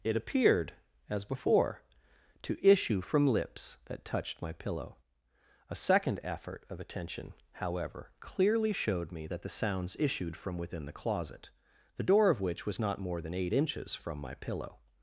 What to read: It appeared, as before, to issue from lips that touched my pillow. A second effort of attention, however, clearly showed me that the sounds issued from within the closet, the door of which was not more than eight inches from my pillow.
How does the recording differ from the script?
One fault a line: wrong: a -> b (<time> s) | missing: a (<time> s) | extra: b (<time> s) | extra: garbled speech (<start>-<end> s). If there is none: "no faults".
no faults